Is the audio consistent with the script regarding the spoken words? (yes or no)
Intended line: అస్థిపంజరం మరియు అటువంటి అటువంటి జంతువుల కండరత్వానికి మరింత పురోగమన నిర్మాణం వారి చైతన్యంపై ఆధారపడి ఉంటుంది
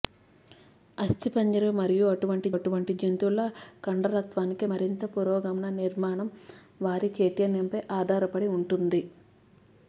yes